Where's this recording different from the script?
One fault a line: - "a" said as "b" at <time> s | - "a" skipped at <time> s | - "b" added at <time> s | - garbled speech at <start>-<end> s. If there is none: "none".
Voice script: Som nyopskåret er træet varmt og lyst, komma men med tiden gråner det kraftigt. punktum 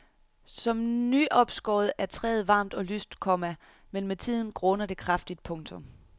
none